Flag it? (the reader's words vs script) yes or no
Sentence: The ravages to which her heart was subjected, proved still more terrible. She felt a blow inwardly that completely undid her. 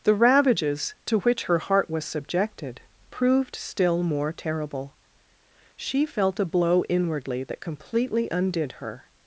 no